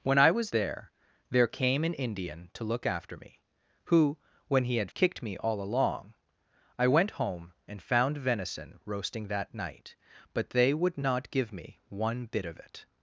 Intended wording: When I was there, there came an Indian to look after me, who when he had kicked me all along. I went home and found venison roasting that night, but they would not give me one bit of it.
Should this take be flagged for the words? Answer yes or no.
no